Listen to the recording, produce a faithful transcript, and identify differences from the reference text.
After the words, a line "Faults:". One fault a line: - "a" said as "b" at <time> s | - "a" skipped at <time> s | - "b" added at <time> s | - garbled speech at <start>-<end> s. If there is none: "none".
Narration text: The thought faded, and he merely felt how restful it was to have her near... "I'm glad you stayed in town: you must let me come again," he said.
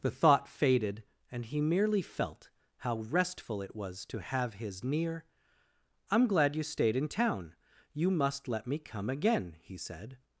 The thought faded, and he merely felt how restful it was to have his near... "I'm glad you stayed in town: you must let me come again," he said.
Faults:
- "her" said as "his" at 4.5 s